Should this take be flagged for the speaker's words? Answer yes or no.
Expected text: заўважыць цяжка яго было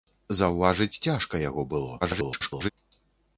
yes